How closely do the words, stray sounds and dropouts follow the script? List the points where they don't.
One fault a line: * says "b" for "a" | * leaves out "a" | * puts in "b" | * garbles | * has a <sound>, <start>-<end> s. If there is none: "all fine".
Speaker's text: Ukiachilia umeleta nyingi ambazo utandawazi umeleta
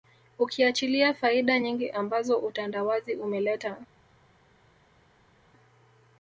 * says "faida" for "umeleta"